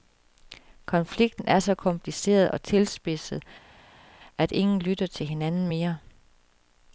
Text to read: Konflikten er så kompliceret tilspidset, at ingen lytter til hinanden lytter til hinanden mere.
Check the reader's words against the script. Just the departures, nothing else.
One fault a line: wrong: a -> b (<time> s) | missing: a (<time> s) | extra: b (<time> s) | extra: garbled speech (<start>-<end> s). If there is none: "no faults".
extra: og (2.5 s)
missing: lytter til hinanden (5.7 s)